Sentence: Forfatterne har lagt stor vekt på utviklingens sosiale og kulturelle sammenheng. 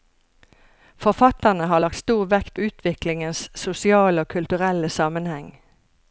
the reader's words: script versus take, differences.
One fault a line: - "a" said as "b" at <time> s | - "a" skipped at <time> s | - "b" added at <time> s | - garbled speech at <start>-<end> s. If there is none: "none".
- "på" skipped at 2.6 s